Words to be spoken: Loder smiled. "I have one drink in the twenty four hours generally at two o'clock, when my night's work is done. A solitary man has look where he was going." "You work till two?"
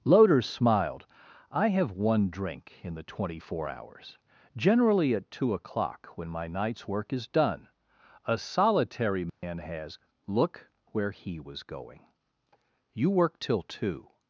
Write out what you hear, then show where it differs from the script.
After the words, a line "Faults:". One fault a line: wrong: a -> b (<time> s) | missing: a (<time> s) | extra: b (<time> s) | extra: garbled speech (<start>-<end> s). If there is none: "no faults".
Loder smiled. "I have one drink in the twenty four hours generally at two o'clock, when my night's work is done. A solitary man has look where he was going." "You work till two?"
Faults:
no faults